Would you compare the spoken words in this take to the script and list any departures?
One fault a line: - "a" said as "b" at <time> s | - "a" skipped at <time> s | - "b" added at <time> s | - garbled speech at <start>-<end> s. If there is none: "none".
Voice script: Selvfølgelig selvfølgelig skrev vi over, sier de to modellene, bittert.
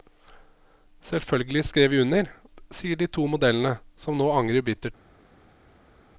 - "selvfølgelig" skipped at 1.6 s
- "over" said as "under" at 2.0 s
- "som nå angrer" added at 4.0 s